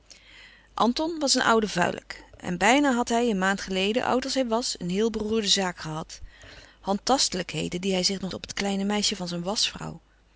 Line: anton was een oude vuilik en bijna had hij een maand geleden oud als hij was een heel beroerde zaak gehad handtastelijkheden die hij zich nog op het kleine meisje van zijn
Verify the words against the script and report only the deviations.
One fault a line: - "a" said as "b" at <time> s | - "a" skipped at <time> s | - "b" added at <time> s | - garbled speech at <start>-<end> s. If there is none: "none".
none